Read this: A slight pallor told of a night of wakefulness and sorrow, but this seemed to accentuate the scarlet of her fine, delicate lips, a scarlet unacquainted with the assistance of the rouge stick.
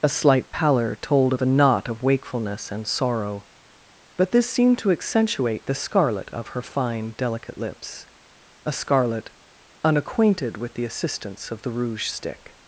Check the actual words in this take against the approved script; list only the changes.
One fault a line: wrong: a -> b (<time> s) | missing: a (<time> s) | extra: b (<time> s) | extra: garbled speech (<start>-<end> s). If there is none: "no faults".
wrong: night -> knot (1.5 s)